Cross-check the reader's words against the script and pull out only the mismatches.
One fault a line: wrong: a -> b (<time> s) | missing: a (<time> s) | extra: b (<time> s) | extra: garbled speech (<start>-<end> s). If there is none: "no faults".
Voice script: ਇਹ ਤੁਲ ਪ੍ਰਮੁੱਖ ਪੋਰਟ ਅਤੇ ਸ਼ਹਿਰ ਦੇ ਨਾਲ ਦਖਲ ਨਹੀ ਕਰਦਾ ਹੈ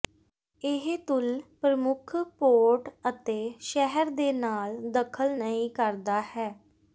no faults